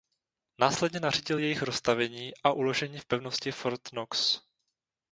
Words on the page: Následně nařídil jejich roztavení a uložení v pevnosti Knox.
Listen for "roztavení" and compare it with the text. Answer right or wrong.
right